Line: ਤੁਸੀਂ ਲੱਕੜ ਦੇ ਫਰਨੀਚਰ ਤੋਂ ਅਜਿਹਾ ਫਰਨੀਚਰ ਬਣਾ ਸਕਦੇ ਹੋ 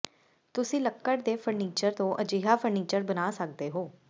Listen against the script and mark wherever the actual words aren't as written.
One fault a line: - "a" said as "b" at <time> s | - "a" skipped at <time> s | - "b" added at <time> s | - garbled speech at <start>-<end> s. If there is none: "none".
none